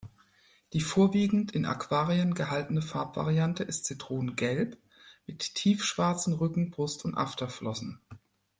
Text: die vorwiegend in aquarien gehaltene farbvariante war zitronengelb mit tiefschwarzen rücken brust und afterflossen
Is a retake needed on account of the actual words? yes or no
yes